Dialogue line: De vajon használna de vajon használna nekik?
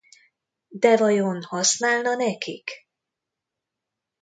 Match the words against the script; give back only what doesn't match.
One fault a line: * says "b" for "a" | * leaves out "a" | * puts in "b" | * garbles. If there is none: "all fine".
* leaves out "de vajon használna"